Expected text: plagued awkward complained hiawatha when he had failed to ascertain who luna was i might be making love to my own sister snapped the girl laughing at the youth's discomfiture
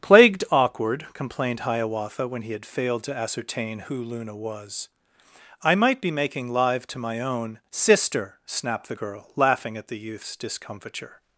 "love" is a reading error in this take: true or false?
true